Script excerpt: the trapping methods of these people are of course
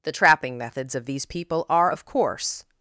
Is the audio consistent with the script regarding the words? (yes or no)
yes